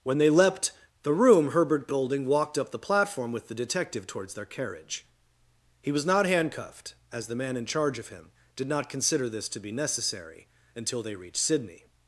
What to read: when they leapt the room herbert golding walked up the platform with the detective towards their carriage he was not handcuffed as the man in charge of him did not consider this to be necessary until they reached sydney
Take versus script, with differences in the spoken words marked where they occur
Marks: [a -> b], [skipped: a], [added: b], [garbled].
when they leapt the room herbert golding walked up the platform with the detective towards their carriage he was not handcuffed as the man in charge of him did not consider this to be necessary until they reached sydney